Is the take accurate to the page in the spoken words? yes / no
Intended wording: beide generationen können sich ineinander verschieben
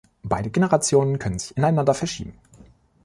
yes